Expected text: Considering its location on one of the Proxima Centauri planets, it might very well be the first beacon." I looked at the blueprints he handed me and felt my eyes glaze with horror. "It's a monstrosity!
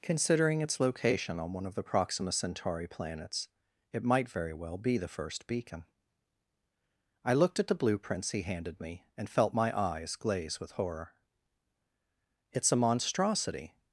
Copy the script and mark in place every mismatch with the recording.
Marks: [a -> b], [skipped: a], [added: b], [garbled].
Considering its location on one of the Proxima Centauri planets, it might very well be the first beacon." I looked at the blueprints he handed me and felt my eyes glaze with horror. "It's a monstrosity!